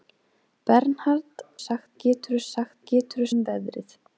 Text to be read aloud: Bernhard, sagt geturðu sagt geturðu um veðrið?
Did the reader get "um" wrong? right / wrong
right